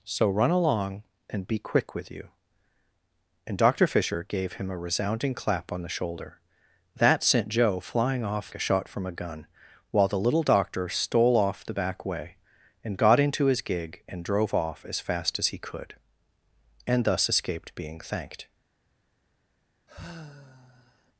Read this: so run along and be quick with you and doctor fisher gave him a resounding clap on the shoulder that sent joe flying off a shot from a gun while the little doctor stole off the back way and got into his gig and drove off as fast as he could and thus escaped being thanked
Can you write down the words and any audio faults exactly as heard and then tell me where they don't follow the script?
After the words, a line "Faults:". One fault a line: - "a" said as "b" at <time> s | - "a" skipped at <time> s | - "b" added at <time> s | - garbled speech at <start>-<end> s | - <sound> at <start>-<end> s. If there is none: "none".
so run along and be quick with you and doctor fisher gave him a resounding clap on the shoulder that sent joe flying off a shot from a gun while the little doctor stole off the back way and got into his gig and drove off as fast as he could and thus escaped being thanked
Faults:
- sigh at 19.9-21.1 s